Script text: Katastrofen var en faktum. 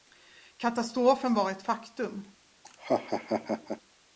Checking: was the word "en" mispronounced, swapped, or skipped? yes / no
yes